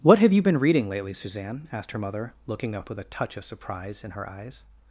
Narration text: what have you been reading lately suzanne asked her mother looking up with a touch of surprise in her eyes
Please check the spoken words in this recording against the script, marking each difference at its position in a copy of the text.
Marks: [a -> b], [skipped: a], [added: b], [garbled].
what have you been reading lately suzanne asked her mother looking up with a touch of surprise in her eyes